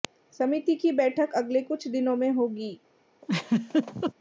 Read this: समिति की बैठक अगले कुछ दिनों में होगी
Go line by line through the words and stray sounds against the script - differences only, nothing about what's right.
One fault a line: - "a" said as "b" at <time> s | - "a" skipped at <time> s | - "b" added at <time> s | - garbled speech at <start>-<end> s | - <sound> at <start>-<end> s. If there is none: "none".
- laugh at 3.2-4.1 s